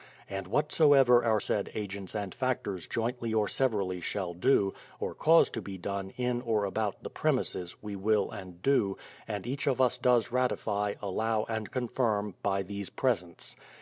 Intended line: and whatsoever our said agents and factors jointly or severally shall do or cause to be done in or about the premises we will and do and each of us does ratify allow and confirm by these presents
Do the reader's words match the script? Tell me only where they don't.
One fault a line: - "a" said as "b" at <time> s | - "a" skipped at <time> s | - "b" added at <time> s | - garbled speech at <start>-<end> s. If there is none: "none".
none